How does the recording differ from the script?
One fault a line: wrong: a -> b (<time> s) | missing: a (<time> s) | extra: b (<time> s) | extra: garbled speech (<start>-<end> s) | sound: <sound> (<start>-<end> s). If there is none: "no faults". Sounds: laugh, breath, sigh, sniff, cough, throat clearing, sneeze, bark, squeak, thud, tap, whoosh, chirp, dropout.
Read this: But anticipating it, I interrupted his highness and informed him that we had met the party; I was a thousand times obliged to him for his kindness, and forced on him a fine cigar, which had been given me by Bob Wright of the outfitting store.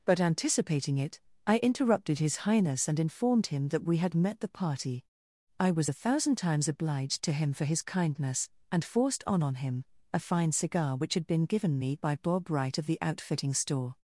extra: on (9.4 s)